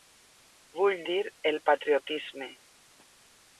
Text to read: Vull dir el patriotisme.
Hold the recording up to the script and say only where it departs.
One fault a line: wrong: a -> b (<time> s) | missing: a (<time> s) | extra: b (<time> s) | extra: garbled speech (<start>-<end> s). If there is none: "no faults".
no faults